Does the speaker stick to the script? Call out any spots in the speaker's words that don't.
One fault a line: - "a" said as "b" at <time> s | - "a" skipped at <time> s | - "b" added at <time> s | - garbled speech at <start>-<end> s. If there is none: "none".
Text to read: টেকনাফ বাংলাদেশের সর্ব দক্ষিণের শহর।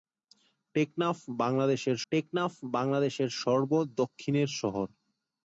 - "টেকনাফ বাংলাদেশের" added at 2.1 s